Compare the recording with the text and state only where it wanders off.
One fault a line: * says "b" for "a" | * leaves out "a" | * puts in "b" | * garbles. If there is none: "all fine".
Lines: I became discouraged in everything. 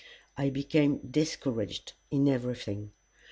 all fine